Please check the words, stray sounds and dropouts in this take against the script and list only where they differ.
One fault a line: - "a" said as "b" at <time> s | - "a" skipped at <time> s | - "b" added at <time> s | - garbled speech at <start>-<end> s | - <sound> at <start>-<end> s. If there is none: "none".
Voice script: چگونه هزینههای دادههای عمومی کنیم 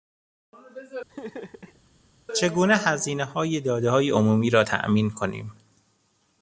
- laugh at 1.1-1.8 s
- "را تامین" added at 4.5 s